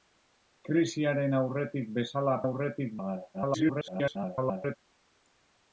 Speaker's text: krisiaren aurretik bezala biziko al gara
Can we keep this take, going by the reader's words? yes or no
no